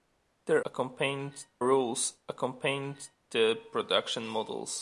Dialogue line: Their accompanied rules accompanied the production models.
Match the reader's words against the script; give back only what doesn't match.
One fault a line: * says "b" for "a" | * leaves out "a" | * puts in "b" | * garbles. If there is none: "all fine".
all fine